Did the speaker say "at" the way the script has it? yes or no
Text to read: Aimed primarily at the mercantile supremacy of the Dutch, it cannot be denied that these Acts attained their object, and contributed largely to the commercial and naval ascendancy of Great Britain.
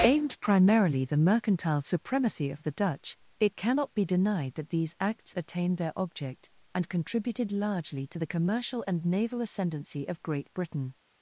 no